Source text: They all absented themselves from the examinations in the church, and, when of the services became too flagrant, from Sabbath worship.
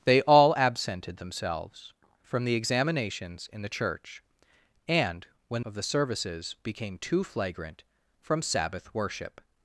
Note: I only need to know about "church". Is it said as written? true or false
true